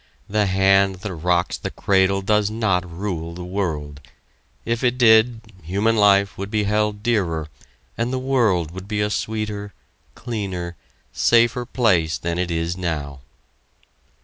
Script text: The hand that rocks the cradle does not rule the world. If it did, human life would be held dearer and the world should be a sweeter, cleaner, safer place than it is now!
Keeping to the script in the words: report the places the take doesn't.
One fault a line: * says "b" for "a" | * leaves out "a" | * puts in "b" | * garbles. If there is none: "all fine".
* says "would" for "should"